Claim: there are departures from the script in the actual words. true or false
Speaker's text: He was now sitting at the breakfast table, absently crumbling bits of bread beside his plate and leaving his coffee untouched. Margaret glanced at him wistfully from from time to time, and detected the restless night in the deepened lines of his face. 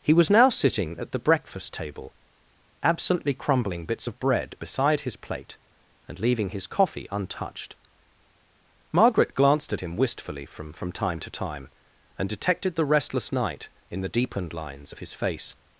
false